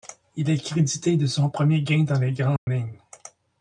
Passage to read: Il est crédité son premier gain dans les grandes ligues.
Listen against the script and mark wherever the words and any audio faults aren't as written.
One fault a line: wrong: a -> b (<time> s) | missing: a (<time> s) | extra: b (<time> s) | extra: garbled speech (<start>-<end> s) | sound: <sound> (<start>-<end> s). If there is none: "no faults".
extra: de (1.1 s)
sound: dropout (2.6-2.7 s)